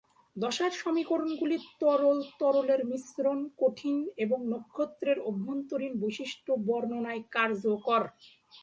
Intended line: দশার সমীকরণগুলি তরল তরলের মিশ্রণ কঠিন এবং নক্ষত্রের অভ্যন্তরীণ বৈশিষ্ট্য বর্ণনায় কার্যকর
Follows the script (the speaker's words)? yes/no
yes